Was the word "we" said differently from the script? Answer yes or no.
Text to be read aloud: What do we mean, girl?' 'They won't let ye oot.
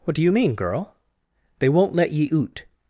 yes